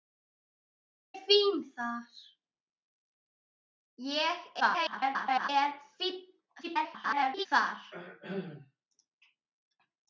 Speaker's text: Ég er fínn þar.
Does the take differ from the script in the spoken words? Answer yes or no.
yes